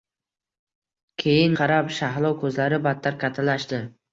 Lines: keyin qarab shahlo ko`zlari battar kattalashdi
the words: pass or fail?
pass